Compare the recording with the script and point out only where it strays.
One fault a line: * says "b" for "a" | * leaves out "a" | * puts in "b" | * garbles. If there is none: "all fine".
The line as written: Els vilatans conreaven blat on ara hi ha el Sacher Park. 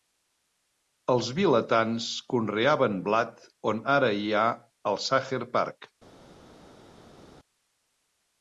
all fine